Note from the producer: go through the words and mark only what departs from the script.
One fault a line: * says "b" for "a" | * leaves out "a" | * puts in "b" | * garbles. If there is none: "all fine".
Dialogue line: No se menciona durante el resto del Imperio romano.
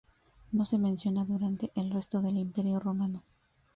all fine